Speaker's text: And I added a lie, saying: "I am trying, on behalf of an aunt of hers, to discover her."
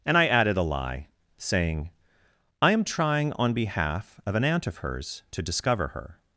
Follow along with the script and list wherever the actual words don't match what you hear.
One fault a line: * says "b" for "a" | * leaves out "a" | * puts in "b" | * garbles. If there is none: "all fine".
all fine